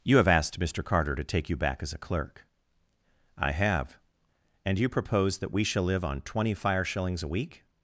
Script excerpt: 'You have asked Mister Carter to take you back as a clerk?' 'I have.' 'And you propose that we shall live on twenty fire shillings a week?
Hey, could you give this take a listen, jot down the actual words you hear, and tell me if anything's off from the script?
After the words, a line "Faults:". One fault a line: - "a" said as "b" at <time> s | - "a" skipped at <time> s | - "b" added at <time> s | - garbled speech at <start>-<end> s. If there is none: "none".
'You have asked Mister Carter to take you back as a clerk?' 'I have.' 'And you propose that we shall live on twenty fire shillings a week?
Faults:
none